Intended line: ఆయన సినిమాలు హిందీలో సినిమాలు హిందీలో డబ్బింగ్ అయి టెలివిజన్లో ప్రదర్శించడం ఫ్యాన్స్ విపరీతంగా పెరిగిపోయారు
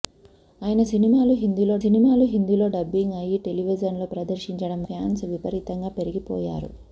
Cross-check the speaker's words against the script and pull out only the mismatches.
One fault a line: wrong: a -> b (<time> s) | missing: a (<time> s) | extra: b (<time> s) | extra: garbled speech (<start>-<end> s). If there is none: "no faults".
no faults